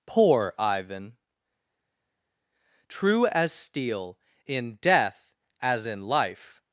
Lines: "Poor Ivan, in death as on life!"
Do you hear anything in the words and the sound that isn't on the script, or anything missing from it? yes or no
yes